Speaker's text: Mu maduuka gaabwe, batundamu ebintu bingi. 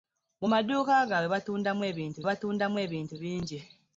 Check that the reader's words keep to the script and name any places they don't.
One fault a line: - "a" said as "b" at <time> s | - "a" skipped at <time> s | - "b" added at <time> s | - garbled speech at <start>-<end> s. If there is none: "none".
- "batundamu ebintu" added at 2.3 s